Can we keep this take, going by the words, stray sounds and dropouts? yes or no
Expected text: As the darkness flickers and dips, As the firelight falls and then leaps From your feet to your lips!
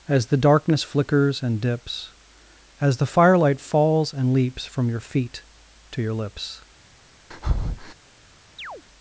no